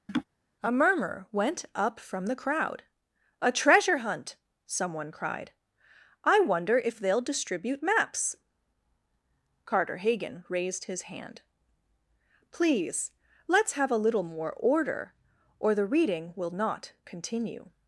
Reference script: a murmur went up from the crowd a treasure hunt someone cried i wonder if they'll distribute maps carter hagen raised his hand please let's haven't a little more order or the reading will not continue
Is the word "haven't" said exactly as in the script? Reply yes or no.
no